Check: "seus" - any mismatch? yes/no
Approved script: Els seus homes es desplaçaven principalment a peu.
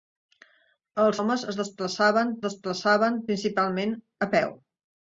yes